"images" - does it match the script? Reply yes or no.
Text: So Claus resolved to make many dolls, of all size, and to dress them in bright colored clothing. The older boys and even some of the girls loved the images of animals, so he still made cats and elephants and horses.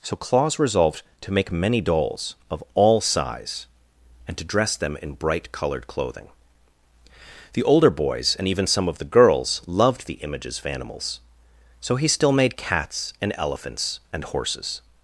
yes